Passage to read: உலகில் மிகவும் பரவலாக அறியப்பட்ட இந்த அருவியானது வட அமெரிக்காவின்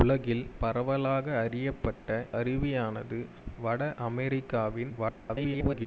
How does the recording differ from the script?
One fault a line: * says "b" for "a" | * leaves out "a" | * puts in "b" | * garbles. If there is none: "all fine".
* leaves out "மிகவும்"
* leaves out "இந்த"
* garbles